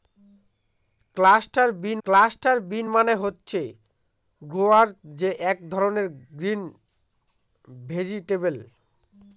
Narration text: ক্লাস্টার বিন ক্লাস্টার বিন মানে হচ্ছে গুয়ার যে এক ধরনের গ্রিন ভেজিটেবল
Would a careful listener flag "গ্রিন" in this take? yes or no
no